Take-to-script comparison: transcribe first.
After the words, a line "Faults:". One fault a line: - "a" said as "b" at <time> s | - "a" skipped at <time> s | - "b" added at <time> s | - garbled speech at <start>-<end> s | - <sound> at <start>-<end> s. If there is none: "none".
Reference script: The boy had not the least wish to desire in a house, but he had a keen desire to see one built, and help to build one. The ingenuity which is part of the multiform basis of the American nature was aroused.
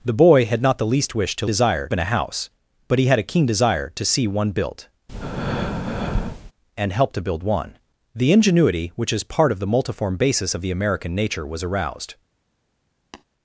The boy had not the least wish to desire in a house, but he had a keen desire to see one built, and help to build one. The ingenuity which is part of the multiform basis of the American nature was aroused.
Faults:
- breath at 5.1-6.5 s
- tap at 13.1-13.2 s